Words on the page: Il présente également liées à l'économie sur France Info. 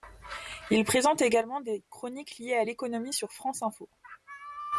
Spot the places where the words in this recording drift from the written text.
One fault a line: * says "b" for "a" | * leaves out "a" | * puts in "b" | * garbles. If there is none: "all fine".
* puts in "des chroniques"